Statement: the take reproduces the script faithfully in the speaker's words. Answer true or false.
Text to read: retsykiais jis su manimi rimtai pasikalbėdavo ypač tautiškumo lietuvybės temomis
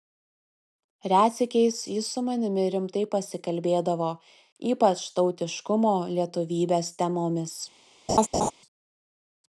true